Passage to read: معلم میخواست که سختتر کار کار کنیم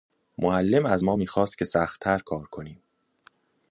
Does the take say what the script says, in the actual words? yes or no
no